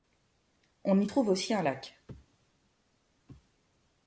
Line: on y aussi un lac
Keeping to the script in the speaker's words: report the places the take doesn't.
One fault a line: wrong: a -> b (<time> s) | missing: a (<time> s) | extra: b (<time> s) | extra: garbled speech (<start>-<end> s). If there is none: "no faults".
extra: trouve (1.0 s)